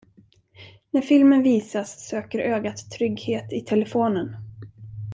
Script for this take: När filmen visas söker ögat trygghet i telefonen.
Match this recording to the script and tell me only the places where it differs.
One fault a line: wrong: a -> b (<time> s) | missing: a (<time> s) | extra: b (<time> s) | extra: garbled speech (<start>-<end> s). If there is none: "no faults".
no faults